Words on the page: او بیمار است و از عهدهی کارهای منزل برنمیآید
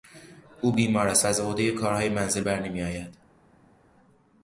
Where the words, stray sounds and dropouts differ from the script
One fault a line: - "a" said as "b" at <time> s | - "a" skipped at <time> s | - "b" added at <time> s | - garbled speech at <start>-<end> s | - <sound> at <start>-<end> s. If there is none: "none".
none